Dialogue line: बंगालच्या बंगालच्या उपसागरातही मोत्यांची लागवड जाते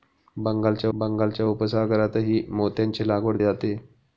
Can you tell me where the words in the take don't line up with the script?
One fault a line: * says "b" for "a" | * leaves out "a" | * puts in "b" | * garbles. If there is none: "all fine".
all fine